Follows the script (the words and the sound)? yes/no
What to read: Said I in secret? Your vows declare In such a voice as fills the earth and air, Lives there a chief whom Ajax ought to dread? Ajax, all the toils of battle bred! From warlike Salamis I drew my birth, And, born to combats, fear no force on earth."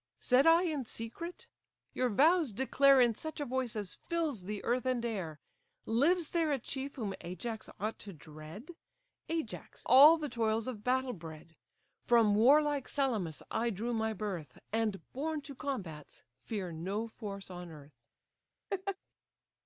no